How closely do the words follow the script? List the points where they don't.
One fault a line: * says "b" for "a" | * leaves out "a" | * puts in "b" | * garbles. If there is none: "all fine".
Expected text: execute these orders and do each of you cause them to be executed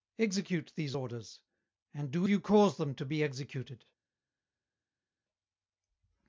* leaves out "each of"